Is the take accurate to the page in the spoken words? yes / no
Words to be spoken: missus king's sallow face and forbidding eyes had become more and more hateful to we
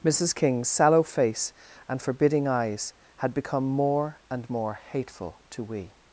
yes